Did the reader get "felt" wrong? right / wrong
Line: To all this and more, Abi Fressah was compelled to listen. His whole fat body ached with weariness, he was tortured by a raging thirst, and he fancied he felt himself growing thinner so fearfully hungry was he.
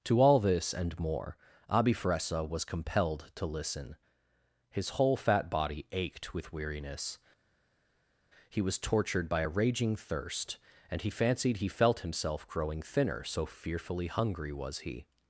right